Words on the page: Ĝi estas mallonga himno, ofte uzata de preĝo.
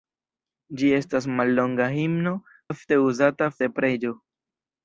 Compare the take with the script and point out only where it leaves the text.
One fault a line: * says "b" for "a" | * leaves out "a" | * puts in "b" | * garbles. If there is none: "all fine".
all fine